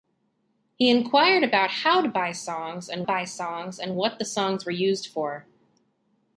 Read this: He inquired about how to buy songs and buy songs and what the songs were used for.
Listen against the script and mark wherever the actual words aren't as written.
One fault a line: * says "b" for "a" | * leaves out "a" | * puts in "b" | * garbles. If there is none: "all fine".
all fine